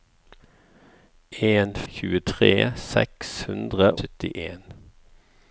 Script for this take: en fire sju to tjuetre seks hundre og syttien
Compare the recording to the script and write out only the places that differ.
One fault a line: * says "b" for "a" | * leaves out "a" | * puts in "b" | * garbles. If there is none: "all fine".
* leaves out "fire sju to"
* leaves out "og"